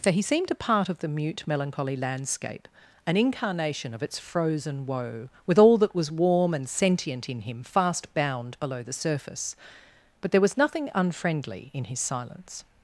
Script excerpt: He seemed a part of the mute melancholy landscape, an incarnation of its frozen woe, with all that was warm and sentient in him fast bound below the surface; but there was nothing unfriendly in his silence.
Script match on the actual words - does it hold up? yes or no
no